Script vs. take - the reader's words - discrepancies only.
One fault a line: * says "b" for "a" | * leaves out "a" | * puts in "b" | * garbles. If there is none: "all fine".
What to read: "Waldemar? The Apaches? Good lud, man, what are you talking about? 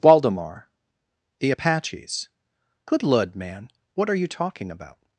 all fine